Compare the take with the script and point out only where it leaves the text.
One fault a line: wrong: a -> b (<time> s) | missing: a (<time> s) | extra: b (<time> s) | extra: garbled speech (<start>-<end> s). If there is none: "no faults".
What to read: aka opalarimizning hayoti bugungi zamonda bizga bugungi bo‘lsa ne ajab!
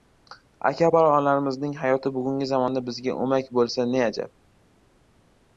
wrong: bugungi -> o‘mak (3.3 s)